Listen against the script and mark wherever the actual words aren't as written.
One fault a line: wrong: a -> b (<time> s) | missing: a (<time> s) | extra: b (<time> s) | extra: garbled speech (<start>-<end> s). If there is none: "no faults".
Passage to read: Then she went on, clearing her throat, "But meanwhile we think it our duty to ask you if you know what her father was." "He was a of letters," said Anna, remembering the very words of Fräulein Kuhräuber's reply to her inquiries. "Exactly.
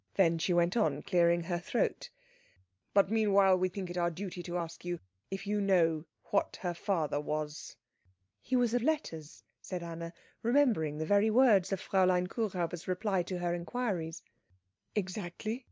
no faults